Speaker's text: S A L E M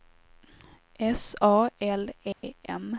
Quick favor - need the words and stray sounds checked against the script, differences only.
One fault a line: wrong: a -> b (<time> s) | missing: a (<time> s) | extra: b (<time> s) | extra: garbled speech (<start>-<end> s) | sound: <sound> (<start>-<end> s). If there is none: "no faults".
sound: dropout (2.3-2.4 s)